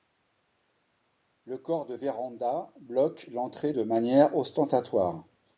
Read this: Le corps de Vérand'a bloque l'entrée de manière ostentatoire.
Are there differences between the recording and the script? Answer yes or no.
no